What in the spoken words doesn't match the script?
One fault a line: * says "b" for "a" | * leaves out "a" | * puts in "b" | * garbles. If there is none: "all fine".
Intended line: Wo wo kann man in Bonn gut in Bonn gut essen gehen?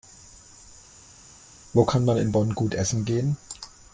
* leaves out "wo"
* leaves out "in Bonn gut"